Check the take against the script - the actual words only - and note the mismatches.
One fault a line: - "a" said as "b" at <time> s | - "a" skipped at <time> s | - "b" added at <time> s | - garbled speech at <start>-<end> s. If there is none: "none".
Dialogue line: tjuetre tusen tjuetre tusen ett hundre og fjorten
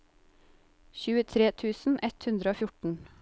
- "tjuetre tusen" skipped at 2.0 s